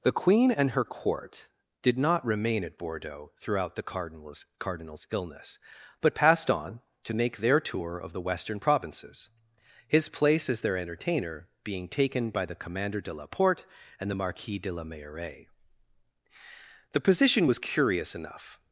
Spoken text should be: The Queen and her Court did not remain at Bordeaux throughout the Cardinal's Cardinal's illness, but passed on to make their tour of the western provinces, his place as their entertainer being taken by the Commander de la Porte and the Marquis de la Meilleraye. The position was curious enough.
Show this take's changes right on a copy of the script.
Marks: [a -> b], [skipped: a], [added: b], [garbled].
The Queen and her Court did not remain at Bordeaux throughout the Cardinal's Cardinal's illness, but passed on to make their tour of the western provinces, his place as their entertainer being taken by the Commander de la Porte and the Marquis de la Meilleraye. The position was curious enough.